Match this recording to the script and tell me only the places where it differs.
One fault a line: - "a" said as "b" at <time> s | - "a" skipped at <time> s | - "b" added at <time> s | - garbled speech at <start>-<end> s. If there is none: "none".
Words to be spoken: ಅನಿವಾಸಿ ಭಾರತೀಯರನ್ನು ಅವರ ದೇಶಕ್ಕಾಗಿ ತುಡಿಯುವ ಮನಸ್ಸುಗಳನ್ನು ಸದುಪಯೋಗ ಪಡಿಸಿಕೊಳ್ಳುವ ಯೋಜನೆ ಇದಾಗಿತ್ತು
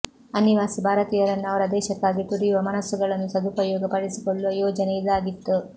none